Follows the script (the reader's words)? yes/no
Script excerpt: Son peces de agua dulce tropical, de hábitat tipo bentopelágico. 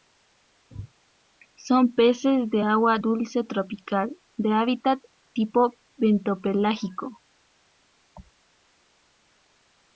yes